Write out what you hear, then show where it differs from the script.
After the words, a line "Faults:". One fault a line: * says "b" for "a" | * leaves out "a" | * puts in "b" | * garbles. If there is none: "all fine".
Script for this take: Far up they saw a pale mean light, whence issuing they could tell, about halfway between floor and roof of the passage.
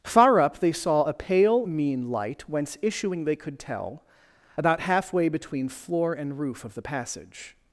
Far up they saw a pale mean light, whence issuing they could tell, about halfway between floor and roof of the passage.
Faults:
all fine